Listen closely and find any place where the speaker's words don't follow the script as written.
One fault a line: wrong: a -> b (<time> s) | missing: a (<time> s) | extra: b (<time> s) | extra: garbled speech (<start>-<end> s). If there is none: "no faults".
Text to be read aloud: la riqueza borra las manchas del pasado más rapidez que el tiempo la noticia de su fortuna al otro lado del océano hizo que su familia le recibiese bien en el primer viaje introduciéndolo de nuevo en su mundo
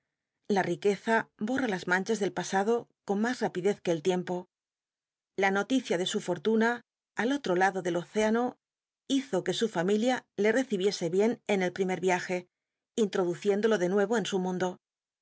extra: con (3.0 s)